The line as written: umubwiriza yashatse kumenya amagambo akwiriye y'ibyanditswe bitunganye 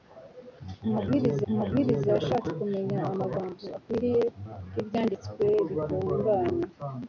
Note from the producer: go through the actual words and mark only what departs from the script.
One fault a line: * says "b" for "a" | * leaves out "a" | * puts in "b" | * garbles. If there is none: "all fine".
* puts in "umubwiriza"